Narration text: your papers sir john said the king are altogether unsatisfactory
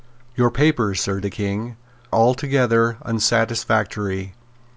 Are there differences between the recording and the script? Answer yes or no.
yes